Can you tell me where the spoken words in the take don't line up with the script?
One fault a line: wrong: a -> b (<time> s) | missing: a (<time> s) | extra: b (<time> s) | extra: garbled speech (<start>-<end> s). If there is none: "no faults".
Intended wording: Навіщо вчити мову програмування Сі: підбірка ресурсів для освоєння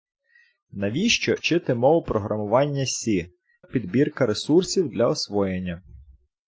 no faults